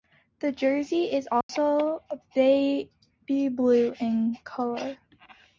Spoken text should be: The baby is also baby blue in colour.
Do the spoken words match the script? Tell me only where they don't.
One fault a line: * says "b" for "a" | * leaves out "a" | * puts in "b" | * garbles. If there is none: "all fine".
* says "jersey" for "baby"